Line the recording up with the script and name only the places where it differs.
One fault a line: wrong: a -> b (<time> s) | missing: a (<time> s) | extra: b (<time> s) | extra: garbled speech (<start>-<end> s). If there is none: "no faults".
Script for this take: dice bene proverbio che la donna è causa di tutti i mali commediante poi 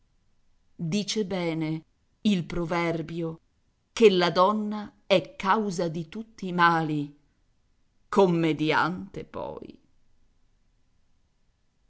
extra: il (2.2 s)